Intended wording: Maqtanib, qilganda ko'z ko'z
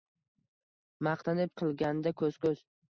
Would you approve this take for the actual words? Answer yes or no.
yes